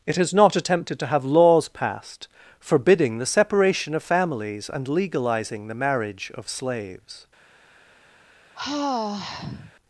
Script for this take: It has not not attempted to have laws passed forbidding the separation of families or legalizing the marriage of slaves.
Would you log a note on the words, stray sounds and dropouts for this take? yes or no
yes